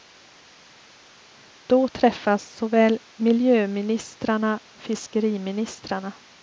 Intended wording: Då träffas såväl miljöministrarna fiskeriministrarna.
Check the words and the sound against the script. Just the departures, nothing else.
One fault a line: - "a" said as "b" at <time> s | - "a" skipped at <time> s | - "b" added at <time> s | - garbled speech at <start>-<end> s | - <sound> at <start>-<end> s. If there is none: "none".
none